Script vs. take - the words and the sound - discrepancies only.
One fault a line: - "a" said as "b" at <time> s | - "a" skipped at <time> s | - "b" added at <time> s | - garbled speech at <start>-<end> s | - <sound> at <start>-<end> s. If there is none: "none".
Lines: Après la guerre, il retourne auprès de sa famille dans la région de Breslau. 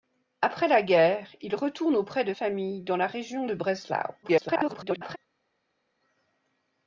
- "sa" skipped at 2.3 s
- garbled speech at 4.2-5.2 s